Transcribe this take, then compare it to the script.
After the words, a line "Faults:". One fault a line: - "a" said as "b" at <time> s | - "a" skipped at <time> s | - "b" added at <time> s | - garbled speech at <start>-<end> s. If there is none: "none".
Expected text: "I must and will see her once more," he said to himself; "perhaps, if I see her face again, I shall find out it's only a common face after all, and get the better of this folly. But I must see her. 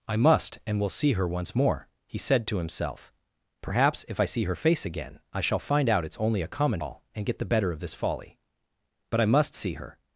"I must and will see her once more," he said to himself; "perhaps, if I see her face again, I shall find out it's only a common all, and get the better of this folly. But I must see her.
Faults:
- "face after" skipped at 6.8 s